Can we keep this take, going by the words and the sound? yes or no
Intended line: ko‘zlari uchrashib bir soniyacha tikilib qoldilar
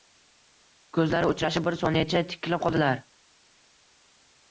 yes